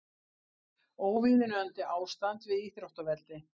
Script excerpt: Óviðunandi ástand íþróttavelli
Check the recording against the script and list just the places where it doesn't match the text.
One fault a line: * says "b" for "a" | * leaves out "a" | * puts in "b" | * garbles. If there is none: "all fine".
* puts in "við"